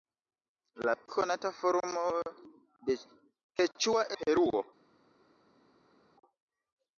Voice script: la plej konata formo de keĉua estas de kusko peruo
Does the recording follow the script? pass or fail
fail